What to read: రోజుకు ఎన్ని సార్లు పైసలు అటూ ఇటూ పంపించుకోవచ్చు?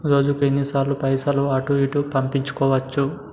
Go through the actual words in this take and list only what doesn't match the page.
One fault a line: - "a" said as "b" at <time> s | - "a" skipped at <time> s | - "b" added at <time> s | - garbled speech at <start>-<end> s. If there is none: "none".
none